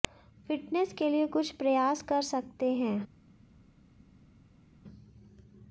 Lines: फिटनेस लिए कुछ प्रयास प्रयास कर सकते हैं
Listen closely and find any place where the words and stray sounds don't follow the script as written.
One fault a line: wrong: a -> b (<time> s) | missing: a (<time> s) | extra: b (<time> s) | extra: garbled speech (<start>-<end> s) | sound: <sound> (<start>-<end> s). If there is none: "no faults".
extra: के (0.9 s)
missing: प्रयास (2.0 s)